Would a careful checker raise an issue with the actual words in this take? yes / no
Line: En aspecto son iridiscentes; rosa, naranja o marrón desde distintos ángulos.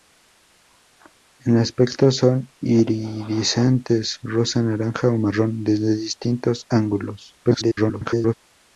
yes